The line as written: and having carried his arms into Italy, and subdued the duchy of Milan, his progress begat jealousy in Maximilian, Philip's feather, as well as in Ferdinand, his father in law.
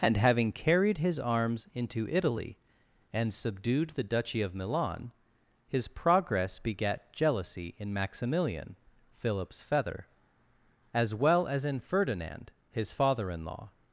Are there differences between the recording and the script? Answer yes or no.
no